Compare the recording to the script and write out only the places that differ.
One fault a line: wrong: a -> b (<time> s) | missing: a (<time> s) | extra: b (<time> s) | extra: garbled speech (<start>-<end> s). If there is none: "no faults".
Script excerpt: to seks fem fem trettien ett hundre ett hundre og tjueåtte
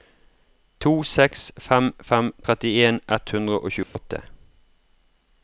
missing: ett hundre (3.6 s)